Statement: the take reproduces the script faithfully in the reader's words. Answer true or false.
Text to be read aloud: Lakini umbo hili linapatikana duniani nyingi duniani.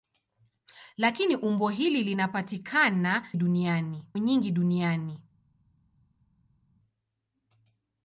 true